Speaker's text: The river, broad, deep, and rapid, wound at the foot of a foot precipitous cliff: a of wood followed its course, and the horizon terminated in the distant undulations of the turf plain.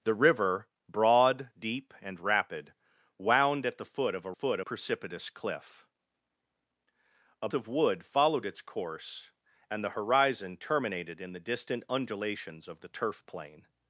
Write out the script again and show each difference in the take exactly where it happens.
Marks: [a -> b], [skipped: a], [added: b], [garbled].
The river, broad, deep, and rapid, wound at the foot of a foot precipitous cliff: a of wood followed its course, and the horizon terminated in the distant undulations of the turf plain.